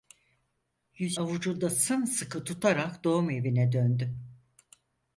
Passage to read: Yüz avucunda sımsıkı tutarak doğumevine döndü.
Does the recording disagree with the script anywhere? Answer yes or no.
no